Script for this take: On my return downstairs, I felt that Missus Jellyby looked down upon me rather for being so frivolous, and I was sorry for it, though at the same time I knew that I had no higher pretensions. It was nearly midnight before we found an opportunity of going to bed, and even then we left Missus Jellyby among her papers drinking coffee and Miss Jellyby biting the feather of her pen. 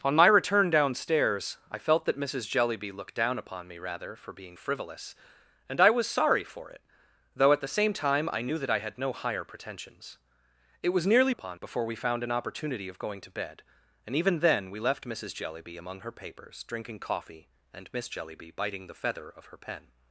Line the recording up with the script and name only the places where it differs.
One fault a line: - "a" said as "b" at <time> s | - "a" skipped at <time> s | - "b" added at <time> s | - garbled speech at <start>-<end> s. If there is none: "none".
- "so" skipped at 4.6 s
- "midnight" said as "upon" at 11.3 s